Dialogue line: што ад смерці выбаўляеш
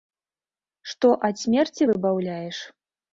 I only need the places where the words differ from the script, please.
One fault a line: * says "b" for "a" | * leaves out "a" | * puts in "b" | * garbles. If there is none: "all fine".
all fine